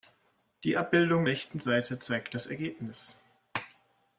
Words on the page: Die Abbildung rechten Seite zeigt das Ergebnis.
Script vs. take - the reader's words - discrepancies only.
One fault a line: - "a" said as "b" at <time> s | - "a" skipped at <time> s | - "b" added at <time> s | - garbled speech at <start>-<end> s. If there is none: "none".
none